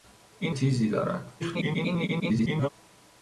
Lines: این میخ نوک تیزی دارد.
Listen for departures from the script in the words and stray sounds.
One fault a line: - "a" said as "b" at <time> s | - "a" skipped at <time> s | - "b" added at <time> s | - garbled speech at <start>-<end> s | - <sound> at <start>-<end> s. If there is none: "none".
- "میخ نوک" skipped at 0.6 s
- garbled speech at 1.4-2.7 s